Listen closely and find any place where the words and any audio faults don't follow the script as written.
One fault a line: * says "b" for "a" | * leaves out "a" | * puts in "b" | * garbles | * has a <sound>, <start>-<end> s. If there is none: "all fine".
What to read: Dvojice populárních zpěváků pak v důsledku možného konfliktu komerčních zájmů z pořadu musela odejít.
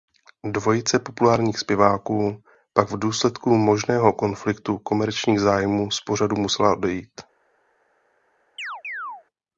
* has a chirp, 8.6-9.2 s